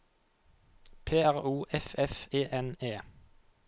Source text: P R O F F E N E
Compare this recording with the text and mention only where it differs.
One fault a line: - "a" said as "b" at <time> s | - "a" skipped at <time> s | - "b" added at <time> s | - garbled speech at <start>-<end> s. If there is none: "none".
none